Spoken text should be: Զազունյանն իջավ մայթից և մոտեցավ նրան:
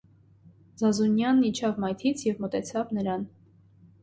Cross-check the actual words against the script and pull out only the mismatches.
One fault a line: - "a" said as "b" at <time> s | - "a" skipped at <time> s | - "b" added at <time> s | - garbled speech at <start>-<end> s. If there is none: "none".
none